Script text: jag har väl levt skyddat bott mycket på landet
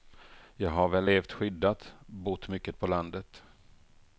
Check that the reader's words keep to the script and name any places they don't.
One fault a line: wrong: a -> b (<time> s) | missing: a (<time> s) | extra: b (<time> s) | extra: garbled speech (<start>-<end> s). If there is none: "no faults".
no faults